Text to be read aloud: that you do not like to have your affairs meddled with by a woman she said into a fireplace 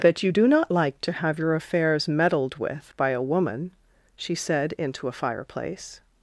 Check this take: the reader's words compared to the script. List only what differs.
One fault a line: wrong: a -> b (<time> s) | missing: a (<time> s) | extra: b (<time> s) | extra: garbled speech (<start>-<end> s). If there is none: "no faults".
no faults